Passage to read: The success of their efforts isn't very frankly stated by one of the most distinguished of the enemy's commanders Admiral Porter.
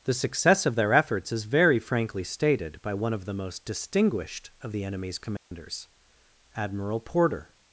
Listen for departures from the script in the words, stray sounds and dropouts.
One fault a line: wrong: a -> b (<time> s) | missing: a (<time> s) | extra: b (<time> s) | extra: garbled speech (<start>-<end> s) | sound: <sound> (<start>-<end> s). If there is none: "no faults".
wrong: isn't -> is (1.3 s)
sound: dropout (5.4-5.5 s)